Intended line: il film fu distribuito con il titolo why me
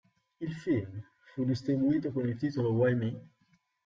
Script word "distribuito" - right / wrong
right